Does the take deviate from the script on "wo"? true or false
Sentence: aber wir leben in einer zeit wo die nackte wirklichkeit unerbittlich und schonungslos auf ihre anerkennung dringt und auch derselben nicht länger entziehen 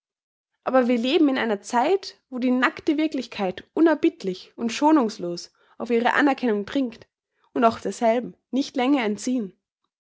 false